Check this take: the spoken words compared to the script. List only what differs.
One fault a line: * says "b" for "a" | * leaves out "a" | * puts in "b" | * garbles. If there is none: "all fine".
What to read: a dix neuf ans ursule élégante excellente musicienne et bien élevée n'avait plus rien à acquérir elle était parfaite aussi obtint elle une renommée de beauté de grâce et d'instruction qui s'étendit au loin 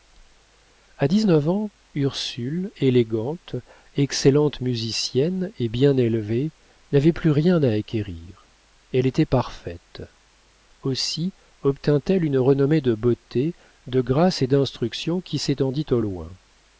all fine